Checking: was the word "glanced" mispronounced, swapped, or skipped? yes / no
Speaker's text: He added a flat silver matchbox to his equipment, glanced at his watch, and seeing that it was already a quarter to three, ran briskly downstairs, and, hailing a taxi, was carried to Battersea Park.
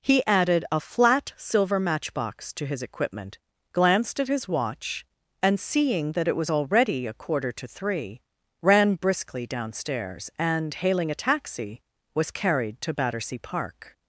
no